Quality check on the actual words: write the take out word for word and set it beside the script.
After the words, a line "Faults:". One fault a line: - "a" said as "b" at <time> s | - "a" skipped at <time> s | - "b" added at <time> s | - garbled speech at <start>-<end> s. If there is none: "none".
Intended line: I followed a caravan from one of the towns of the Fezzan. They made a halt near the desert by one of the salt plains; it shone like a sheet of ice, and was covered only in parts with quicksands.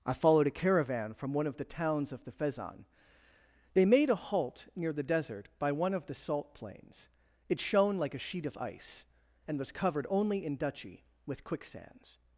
I followed a caravan from one of the towns of the Fezzan. They made a halt near the desert by one of the salt plains; it shone like a sheet of ice, and was covered only in duchy with quicksands.
Faults:
- "parts" said as "duchy" at 10.5 s